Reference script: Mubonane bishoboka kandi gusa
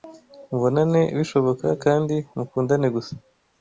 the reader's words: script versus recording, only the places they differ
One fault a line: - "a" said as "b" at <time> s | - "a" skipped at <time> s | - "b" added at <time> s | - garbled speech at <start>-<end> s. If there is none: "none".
- "mukundane" added at 2.3 s